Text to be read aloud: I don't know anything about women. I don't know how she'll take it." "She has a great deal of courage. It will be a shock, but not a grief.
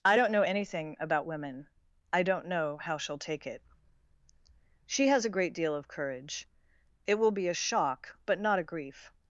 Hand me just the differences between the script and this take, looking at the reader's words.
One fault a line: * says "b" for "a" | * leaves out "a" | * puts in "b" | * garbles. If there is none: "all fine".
all fine